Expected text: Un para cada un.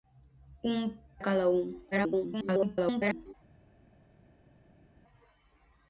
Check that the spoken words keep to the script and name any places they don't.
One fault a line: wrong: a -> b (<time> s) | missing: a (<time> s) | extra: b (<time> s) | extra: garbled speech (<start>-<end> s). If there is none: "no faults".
missing: para (1.0 s)
extra: garbled speech (1.9-3.3 s)